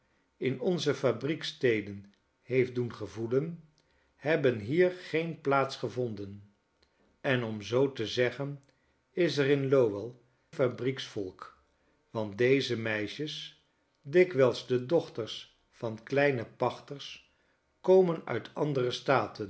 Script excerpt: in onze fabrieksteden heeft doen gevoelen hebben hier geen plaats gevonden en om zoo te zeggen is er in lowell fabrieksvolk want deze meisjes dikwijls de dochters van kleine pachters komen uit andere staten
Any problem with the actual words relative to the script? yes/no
no